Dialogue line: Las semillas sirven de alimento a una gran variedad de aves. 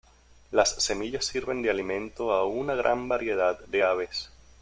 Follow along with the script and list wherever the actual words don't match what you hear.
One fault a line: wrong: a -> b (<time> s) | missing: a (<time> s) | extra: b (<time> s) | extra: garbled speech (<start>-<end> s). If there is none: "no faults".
no faults